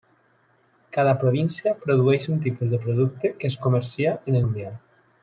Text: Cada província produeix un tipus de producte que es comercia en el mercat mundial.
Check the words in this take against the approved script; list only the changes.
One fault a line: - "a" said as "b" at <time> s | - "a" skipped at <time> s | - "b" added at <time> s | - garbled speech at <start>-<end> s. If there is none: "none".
- "el mercat" skipped at 4.4 s